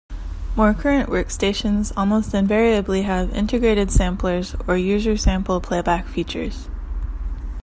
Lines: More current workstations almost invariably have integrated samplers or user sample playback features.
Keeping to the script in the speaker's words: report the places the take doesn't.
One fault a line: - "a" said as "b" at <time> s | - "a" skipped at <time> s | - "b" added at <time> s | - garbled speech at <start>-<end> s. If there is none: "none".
none